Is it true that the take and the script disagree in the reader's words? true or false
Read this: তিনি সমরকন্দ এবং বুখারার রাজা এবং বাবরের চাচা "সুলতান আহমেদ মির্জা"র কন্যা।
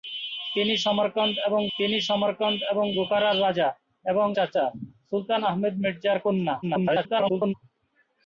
true